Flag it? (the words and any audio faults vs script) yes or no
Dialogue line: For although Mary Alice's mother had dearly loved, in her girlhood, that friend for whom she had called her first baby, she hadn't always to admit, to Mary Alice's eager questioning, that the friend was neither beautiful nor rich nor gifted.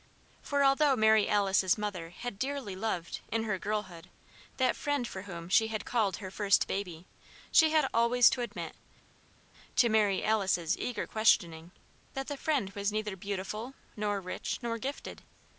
yes